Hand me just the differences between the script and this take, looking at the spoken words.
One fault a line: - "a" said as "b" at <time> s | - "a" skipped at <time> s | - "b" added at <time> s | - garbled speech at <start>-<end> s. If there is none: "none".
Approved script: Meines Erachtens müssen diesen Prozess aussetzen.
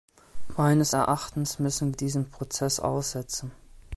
none